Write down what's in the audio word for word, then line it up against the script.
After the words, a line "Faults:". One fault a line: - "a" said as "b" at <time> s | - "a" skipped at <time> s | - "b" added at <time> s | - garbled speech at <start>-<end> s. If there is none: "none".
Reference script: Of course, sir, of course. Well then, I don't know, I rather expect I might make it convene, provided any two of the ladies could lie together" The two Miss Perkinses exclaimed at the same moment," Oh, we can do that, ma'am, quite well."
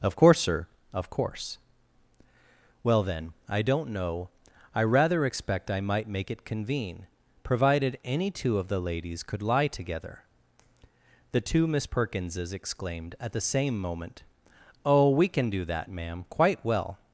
Of course, sir, of course. Well then, I don't know, I rather expect I might make it convene, provided any two of the ladies could lie together" The two Miss Perkinses exclaimed at the same moment," Oh, we can do that, ma'am, quite well."
Faults:
none